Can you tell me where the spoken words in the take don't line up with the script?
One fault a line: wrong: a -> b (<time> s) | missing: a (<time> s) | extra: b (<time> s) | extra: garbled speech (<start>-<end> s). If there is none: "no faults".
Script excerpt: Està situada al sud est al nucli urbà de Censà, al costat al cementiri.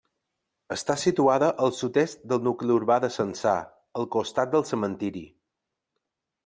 wrong: al -> del (2.3 s)
wrong: al -> del (4.6 s)